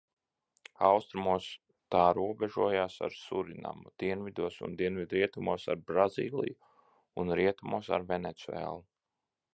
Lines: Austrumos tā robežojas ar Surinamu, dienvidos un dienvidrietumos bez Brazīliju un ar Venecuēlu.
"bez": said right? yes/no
no